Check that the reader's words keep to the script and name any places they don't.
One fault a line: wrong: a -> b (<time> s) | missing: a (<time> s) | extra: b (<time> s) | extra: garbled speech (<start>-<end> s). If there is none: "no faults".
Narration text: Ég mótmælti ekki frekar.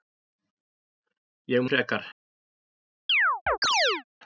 missing: mótmælti ekki (1.6 s)